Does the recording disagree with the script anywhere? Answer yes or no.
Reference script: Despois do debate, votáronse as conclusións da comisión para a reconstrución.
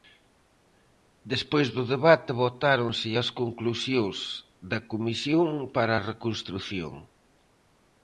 no